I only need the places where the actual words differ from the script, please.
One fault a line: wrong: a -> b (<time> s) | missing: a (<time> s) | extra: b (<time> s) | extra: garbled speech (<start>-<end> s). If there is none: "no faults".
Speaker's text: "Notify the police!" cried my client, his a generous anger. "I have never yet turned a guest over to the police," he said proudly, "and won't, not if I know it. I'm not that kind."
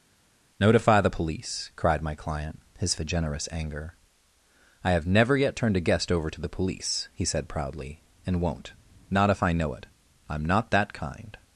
no faults